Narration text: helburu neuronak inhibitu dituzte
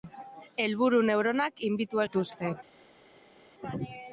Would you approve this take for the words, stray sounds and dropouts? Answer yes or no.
yes